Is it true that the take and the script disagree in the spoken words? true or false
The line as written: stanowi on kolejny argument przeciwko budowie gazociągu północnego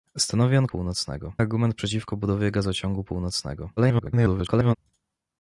true